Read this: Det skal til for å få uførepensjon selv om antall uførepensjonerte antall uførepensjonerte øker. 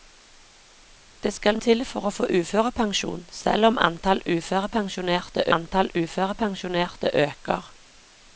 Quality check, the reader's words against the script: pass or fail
pass